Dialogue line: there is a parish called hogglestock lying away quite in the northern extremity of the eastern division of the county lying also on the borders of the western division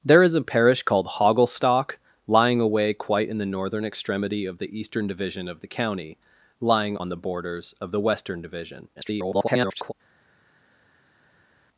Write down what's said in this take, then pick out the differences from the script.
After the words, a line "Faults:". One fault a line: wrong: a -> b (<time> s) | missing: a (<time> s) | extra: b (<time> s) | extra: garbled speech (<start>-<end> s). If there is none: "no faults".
there is a parish called hogglestock lying away quite in the northern extremity of the eastern division of the county lying on the borders of the western division [garbled]
Faults:
missing: also (7.0 s)
extra: garbled speech (9.0-9.9 s)